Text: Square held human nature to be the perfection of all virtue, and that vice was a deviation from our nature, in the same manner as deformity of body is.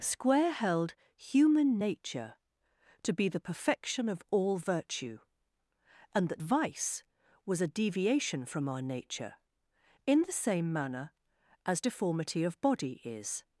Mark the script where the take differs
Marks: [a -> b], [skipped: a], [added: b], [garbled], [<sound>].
Square held human nature to be the perfection of all virtue, and that vice was a deviation from our nature, in the same manner as deformity of body is.